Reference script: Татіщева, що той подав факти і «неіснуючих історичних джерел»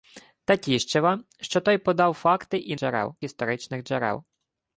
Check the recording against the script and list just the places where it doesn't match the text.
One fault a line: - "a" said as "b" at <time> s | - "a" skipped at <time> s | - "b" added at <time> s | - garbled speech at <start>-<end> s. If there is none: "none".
- "неіснуючих" said as "джерел" at 2.7 s